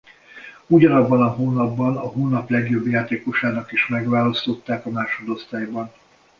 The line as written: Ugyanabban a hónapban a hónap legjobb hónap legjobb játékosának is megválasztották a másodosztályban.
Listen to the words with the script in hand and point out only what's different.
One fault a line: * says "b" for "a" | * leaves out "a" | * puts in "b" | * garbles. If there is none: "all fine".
* leaves out "hónap legjobb"